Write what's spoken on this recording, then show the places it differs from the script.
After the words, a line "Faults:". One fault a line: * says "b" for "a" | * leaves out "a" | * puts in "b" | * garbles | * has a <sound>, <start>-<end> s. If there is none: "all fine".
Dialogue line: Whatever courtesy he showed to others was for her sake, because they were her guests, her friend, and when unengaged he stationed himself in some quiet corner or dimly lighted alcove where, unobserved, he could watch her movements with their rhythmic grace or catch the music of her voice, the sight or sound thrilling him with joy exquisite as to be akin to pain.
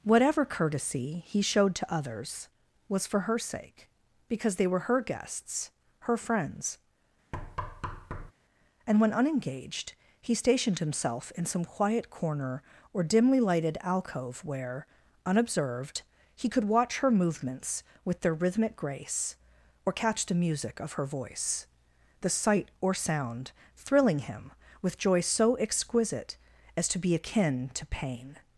Whatever courtesy he showed to others was for her sake, because they were her guests, her friends, and when unengaged he stationed himself in some quiet corner or dimly lighted alcove where, unobserved, he could watch her movements with their rhythmic grace or catch the music of her voice, the sight or sound thrilling him with joy so exquisite as to be akin to pain.
Faults:
* says "friends" for "friend"
* has a thud, 7.3-8.3 s
* puts in "so"